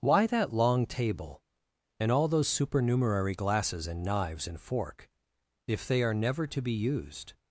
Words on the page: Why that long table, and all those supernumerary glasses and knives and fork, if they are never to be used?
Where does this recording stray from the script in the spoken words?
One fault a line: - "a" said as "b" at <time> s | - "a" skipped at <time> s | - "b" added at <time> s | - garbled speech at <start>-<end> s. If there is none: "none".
none